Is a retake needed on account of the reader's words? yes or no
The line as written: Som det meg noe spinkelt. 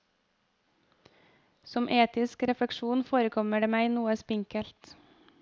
yes